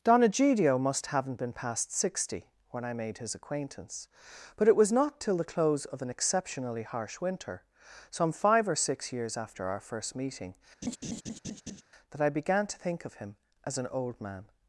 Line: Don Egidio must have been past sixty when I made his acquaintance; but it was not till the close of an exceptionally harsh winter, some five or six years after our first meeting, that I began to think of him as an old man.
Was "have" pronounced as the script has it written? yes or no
no